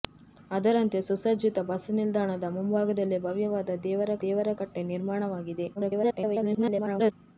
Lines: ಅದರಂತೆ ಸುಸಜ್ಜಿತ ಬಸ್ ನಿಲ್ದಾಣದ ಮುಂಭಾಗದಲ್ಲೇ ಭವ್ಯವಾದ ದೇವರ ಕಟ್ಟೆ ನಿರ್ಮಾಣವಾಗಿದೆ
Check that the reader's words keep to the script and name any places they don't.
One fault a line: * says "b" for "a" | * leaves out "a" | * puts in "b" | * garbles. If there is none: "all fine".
* puts in "ದೇವರ"
* garbles